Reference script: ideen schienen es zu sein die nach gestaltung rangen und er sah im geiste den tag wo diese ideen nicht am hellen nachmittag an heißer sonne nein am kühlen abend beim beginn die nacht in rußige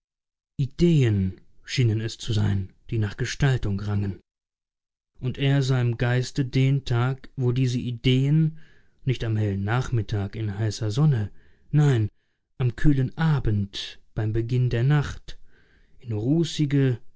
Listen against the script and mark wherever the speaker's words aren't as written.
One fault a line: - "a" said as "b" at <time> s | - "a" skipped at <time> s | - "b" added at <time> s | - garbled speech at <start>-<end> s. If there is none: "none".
- "an" said as "in" at 10.4 s
- "die" said as "der" at 14.7 s